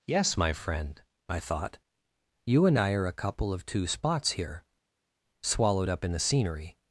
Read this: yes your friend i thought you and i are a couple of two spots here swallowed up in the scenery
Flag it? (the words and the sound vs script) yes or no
yes